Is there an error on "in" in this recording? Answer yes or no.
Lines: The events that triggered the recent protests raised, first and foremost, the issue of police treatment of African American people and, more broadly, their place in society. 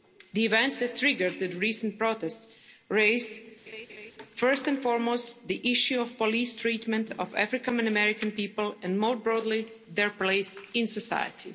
no